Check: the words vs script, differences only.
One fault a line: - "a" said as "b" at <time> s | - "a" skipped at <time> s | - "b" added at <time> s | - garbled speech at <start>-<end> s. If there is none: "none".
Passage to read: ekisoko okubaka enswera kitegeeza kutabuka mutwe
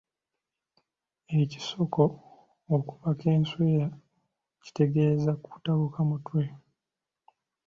none